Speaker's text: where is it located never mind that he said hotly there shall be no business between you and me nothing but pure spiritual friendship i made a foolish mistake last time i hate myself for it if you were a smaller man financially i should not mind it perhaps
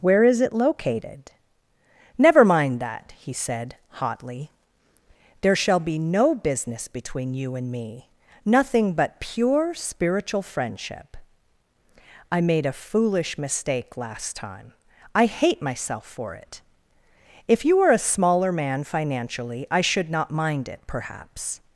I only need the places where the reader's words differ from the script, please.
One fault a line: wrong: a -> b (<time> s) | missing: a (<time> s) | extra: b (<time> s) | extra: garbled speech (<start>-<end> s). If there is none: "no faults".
no faults